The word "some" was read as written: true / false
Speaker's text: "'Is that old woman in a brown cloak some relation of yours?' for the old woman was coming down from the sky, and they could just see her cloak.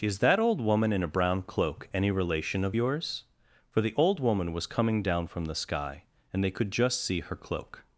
false